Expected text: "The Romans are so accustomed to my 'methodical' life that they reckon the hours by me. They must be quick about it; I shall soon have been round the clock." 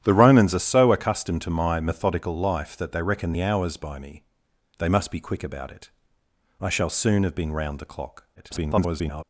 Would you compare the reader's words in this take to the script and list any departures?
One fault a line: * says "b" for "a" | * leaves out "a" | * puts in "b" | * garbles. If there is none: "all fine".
* garbles